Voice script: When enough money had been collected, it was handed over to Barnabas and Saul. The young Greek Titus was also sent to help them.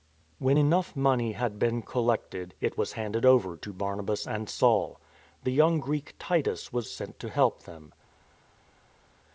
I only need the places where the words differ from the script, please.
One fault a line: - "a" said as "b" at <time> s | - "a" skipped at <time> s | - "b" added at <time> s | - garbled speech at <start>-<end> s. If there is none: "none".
- "also" skipped at 6.9 s